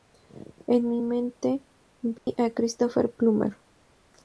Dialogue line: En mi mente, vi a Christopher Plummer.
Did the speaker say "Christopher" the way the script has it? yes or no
yes